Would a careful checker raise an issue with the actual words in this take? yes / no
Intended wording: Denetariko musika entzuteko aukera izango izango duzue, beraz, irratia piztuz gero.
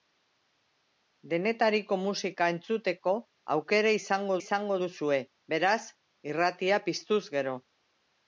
no